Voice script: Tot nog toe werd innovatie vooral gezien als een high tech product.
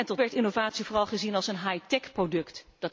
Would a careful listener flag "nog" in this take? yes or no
yes